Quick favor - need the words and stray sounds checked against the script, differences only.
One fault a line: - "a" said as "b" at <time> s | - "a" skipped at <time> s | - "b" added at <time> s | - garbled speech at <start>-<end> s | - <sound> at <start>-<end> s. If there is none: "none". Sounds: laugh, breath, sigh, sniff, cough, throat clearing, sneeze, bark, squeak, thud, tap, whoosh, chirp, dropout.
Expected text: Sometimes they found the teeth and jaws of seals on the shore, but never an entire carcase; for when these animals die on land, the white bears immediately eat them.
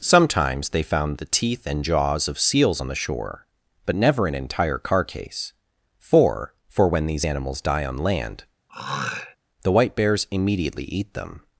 - "for" added at 6.7 s
- throat clearing at 8.7-9.4 s